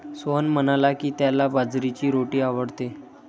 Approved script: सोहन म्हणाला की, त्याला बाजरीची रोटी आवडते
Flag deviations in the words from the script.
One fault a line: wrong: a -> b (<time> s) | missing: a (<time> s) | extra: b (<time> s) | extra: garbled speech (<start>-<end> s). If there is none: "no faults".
no faults